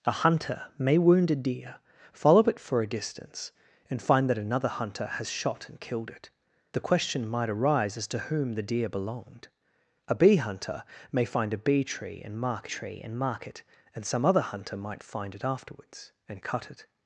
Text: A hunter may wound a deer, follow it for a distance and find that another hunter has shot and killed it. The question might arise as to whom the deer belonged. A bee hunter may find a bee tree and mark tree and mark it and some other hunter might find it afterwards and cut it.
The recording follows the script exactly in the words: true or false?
true